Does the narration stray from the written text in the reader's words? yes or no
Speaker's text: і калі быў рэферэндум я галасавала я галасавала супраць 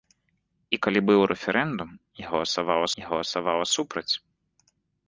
no